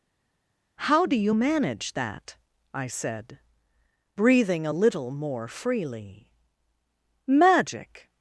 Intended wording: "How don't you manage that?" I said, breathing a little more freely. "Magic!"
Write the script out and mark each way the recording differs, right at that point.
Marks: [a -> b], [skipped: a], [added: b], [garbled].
"How [don't -> do] you manage that?" I said, breathing a little more freely. "Magic!"